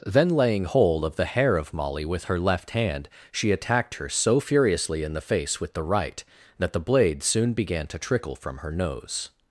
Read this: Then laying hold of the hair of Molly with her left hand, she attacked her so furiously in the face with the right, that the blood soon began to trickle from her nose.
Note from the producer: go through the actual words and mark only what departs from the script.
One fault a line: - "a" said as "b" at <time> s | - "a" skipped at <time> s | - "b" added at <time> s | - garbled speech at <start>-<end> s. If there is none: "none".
- "blood" said as "blade" at 6.8 s